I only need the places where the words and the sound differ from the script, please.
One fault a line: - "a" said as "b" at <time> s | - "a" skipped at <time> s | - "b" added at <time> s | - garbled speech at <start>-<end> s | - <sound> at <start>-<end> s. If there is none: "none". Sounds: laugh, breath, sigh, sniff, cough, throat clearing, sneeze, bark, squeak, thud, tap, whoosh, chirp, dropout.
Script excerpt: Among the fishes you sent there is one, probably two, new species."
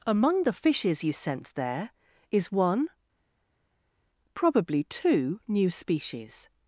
none